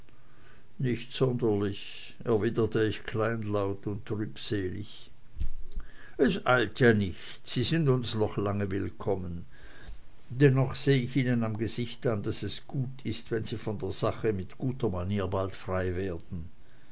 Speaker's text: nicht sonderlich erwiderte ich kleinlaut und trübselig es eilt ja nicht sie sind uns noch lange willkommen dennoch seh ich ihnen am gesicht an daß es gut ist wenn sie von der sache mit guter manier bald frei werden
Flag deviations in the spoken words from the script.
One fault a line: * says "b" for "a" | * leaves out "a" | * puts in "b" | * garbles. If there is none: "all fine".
all fine